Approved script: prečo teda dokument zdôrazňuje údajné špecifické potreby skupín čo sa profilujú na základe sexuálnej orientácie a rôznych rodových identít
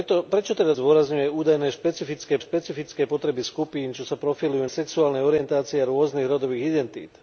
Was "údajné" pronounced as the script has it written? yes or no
yes